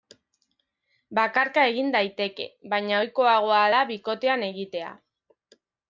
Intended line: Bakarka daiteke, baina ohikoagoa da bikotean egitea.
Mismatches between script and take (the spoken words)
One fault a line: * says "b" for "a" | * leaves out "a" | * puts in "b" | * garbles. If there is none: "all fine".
* puts in "egin"